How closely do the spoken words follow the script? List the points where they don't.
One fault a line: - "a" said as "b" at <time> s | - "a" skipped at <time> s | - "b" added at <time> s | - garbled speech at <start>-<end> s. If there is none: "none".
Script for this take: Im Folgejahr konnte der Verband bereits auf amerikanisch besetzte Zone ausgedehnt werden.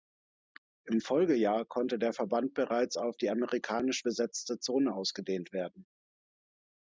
- "die" added at 3.2 s